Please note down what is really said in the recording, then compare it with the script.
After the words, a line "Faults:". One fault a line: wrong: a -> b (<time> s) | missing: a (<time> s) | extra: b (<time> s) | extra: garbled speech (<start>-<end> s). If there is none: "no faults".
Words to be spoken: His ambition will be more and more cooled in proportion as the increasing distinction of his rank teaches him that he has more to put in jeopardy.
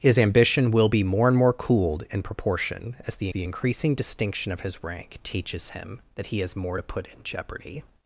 His ambition will be more and more cooled in proportion as the the increasing distinction of his rank teaches him that he has more to put in jeopardy.
Faults:
extra: the (3.3 s)